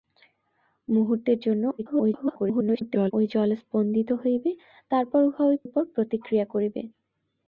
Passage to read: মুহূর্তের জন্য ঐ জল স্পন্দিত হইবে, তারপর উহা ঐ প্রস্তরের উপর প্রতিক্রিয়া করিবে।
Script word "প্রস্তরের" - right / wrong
wrong